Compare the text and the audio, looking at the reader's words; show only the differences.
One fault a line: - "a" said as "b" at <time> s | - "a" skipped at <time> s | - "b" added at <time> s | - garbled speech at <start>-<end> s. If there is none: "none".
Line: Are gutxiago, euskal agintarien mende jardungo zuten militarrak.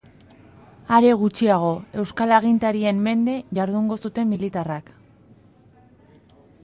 none